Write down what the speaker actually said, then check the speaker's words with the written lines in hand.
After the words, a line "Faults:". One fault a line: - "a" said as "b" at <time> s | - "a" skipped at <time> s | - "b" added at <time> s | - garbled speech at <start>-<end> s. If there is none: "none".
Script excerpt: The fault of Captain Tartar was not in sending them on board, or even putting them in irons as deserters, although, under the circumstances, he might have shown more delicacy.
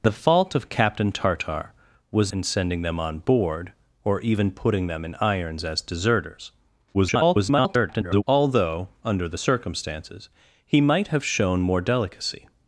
The fault of Captain Tartar was in sending them on board, or even putting them in irons as deserters, [garbled] although, under the circumstances, he might have shown more delicacy.
Faults:
- "not" skipped at 2.3 s
- garbled speech at 6.9-8.2 s